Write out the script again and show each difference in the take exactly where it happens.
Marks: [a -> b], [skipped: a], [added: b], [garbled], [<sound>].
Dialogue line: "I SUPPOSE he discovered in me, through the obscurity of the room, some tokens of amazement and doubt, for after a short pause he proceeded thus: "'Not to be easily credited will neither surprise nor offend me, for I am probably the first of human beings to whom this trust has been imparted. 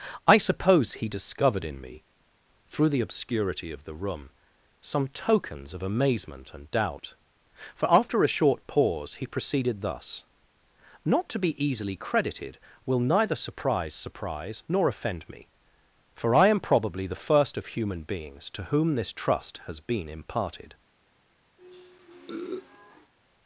"I SUPPOSE he discovered in me, through the obscurity of the room, some tokens of amazement and doubt, for after a short pause he proceeded thus: "'Not to be easily credited will neither surprise [added: surprise] nor offend me, for I am probably the first of human beings to whom this trust has been imparted. [sniff]